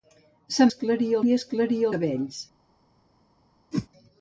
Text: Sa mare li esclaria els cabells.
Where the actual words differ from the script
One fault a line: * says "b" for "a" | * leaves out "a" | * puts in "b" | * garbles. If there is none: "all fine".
* says "esclaria" for "mare"
* leaves out "els"